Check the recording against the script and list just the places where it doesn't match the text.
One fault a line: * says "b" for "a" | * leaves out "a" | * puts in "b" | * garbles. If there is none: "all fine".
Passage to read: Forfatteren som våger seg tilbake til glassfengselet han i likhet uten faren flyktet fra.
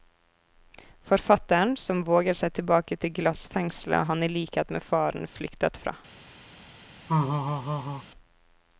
* says "med" for "uten"